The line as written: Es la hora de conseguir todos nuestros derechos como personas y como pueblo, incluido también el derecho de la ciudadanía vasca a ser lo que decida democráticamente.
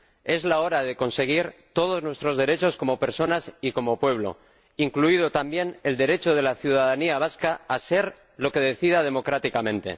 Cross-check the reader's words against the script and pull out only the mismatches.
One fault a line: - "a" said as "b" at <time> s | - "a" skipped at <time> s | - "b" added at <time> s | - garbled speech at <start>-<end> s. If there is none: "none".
none